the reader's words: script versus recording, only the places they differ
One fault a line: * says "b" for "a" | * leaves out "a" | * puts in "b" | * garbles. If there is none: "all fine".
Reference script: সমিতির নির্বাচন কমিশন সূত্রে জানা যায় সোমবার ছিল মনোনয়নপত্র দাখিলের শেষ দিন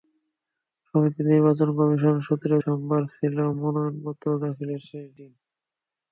* leaves out "জানা যায়"